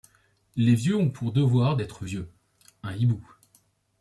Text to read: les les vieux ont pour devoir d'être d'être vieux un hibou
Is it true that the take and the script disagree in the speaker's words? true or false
true